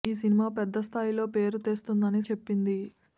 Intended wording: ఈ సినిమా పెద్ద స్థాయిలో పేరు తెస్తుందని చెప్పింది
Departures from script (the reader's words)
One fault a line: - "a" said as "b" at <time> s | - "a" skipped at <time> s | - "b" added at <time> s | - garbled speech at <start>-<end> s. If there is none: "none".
none